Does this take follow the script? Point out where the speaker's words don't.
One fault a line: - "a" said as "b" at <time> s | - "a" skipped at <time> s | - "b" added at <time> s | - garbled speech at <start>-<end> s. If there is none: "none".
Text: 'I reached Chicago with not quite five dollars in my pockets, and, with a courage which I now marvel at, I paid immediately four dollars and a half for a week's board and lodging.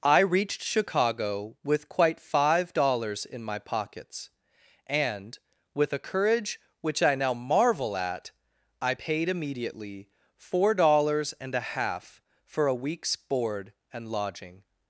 - "not" skipped at 1.9 s